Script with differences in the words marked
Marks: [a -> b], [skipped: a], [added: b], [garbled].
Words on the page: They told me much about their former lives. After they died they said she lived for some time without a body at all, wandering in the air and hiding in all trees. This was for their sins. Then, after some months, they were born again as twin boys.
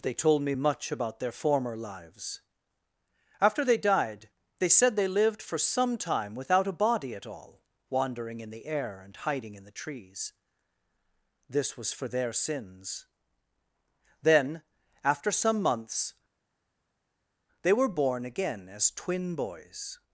They told me much about their former lives. After they died they said [she -> they] lived for some time without a body at all, wandering in the air and hiding in [all -> the] trees. This was for their sins. Then, after some months, they were born again as twin boys.